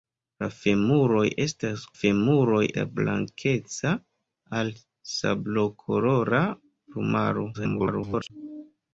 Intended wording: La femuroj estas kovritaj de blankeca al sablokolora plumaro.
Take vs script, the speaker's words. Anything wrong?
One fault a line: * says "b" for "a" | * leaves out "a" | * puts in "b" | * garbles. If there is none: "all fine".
* says "femuroj" for "kovritaj"
* garbles